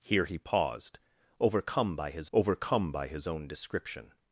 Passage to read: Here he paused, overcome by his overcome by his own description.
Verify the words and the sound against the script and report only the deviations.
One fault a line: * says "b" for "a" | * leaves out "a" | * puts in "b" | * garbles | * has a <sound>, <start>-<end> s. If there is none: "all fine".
all fine